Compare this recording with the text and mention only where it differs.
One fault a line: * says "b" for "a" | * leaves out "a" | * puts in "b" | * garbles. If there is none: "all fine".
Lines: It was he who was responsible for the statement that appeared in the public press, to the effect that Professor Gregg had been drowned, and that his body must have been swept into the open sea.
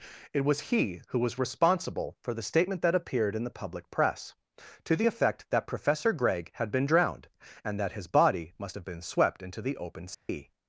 all fine